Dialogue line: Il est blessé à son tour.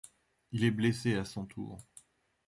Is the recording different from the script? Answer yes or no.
no